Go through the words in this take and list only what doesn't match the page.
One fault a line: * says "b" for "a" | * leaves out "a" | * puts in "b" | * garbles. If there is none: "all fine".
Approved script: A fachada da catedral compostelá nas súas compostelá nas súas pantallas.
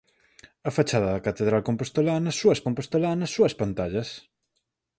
all fine